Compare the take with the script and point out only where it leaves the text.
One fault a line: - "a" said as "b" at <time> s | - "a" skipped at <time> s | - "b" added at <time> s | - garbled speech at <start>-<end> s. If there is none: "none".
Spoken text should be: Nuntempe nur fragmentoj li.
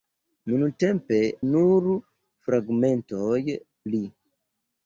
none